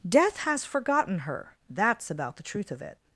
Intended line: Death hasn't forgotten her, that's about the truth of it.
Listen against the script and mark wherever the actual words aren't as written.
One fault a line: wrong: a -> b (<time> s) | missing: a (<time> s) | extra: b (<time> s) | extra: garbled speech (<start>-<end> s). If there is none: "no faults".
wrong: hasn't -> has (0.4 s)